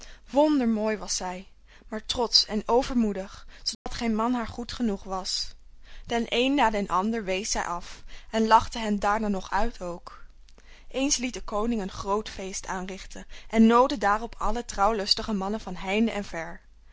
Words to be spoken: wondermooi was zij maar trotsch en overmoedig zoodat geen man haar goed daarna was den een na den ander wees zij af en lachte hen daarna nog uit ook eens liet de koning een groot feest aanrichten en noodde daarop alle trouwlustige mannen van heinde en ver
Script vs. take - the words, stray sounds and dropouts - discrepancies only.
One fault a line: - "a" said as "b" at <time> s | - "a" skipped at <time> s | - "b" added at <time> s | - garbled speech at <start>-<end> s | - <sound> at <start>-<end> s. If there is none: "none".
- dropout at 3.7-3.9 s
- "daarna" said as "genoeg" at 4.7 s